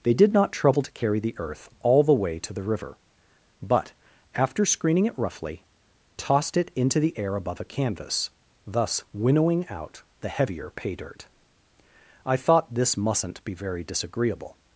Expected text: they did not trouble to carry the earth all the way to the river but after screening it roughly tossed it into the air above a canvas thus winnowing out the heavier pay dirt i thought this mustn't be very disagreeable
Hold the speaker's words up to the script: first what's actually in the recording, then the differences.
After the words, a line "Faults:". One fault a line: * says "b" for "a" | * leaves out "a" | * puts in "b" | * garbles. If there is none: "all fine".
they did not trouble to carry the earth all the way to the river but after screening it roughly tossed it into the air above a canvas thus winnowing out the heavier pay dirt i thought this mustn't be very disagreeable
Faults:
all fine